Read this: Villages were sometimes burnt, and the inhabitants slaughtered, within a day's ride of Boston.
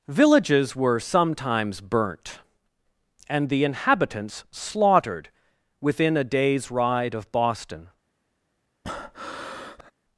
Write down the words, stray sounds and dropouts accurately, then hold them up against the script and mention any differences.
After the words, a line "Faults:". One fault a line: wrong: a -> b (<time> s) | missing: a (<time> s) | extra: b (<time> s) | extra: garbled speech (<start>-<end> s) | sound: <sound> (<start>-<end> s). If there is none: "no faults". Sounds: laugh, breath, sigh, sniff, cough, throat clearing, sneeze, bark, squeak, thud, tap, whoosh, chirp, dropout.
Villages were sometimes burnt, and the inhabitants slaughtered, within a day's ride of Boston.
Faults:
sound: breath (8.8-9.9 s)